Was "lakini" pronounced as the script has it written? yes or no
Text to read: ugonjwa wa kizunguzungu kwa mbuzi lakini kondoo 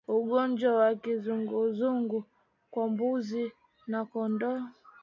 no